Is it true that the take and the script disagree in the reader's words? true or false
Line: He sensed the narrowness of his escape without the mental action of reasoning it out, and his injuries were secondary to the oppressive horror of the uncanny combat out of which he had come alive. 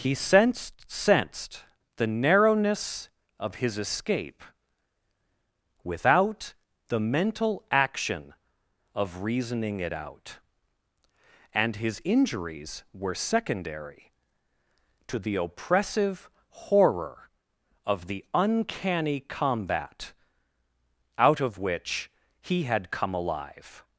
true